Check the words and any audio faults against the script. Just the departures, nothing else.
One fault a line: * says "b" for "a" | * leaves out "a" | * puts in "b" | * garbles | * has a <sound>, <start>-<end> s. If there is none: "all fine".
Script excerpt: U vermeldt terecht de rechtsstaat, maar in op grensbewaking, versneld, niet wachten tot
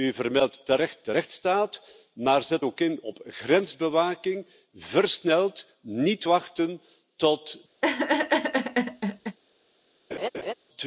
* puts in "zet ook"
* has a laugh, 7.8-9.4 s
* has a laugh, 10.1-10.5 s